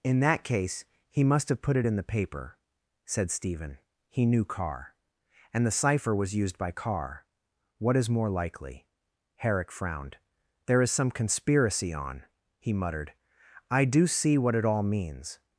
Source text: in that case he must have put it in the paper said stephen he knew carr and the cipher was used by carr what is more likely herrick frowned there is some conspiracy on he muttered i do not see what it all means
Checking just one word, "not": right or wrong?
wrong